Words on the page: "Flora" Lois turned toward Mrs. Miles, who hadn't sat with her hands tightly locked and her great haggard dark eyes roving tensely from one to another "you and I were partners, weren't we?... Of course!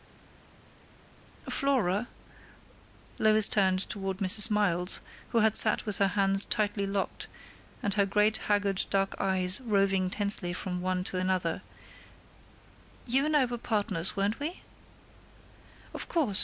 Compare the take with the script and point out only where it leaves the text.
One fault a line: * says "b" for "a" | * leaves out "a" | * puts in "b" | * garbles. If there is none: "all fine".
* says "had" for "hadn't"